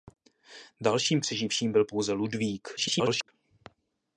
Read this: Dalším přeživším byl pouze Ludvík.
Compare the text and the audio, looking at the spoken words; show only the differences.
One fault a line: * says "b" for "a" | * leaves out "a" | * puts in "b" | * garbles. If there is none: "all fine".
* garbles